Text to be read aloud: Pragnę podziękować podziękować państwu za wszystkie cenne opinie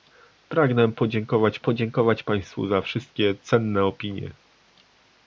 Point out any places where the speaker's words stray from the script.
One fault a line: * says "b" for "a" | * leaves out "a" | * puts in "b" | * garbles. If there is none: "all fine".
all fine